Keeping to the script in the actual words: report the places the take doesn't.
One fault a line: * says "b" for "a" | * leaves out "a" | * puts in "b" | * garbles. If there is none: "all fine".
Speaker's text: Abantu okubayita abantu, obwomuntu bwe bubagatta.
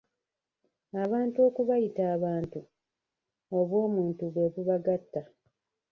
all fine